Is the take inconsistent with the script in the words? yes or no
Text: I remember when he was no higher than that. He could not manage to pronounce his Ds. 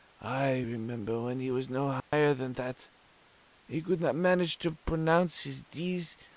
no